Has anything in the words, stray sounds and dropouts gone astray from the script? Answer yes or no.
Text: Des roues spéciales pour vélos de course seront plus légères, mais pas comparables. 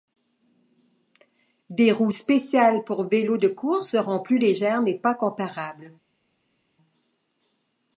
no